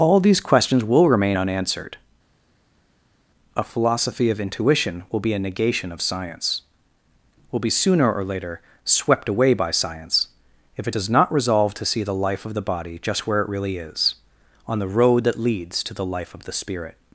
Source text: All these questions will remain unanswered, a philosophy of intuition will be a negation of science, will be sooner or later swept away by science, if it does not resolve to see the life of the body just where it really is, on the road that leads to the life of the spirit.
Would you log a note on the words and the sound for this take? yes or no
no